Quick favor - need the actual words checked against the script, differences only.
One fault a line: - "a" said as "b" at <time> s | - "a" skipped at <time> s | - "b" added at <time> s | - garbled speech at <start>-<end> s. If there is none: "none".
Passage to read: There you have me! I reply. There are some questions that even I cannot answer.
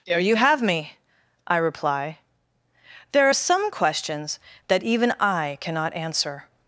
none